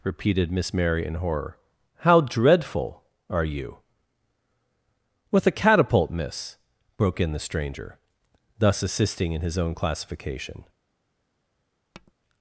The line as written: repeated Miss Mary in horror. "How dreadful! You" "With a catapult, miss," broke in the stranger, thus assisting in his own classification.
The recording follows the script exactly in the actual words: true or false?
false